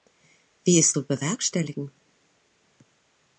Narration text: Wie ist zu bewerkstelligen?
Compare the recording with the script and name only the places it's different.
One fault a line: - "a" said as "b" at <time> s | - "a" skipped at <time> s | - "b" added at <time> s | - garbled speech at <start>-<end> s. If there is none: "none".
none